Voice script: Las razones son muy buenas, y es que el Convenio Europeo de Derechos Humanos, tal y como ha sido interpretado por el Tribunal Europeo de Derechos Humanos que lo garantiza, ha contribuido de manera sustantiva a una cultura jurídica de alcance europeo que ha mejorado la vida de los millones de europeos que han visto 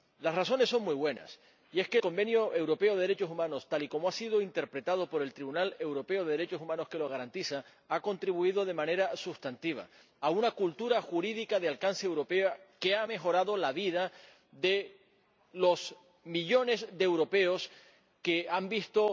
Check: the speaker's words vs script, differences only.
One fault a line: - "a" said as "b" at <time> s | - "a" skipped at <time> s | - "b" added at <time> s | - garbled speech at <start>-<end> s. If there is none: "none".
- "el" skipped at 2.0 s